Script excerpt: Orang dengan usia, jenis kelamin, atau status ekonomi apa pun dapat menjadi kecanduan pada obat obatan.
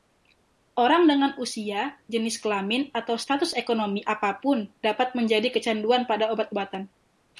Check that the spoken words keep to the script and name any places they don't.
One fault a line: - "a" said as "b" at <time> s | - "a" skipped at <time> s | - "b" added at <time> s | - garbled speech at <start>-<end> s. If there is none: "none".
none